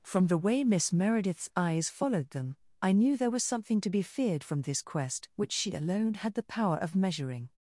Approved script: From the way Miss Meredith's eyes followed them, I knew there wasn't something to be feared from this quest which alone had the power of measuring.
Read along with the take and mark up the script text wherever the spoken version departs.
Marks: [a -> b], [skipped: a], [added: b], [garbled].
From the way Miss Meredith's eyes followed them, I knew there [wasn't -> was] something to be feared from this quest which [added: she] alone had the power of measuring.